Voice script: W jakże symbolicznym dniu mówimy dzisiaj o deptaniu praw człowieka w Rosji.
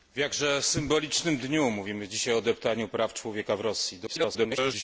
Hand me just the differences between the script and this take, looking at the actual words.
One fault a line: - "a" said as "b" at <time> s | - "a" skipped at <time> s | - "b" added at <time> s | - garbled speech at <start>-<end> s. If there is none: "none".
- garbled speech at 4.1-4.8 s